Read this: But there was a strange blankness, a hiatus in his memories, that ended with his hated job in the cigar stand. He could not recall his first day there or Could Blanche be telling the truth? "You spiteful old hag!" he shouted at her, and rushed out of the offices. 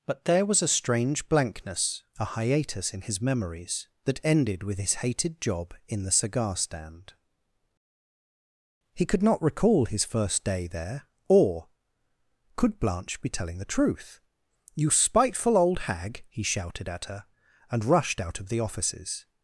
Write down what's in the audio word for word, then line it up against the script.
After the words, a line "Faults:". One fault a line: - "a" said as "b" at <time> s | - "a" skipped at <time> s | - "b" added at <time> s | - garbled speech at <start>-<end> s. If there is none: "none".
But there was a strange blankness, a hiatus in his memories, that ended with his hated job in the cigar stand. He could not recall his first day there or Could Blanche be telling the truth? "You spiteful old hag!" he shouted at her, and rushed out of the offices.
Faults:
none